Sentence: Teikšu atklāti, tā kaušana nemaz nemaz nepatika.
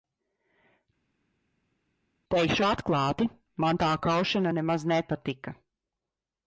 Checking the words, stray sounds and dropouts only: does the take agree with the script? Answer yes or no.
no